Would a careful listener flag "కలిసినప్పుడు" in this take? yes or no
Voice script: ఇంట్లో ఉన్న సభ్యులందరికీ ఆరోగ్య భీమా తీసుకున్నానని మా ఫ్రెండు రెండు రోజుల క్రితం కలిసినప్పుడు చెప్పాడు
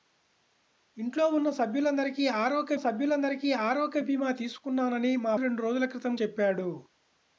yes